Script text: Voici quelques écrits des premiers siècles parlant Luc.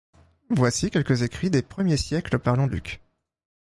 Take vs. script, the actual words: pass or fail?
pass